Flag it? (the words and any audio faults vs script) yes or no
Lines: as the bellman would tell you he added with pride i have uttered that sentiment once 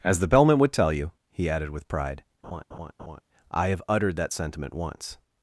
yes